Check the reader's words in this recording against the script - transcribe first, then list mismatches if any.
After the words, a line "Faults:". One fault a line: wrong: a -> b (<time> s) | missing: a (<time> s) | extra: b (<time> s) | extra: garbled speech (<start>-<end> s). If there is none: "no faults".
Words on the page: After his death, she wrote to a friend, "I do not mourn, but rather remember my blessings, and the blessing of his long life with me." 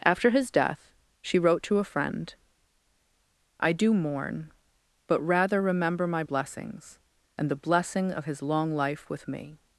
After his death, she wrote to a friend, "I do mourn, but rather remember my blessings, and the blessing of his long life with me."
Faults:
missing: not (3.9 s)